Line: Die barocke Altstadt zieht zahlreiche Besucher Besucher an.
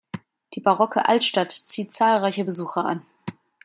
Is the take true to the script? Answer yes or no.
no